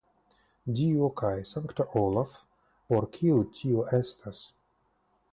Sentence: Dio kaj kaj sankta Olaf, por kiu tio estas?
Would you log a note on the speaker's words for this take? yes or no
yes